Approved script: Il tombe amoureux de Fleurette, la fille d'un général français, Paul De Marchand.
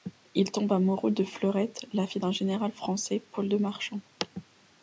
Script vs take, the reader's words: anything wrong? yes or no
no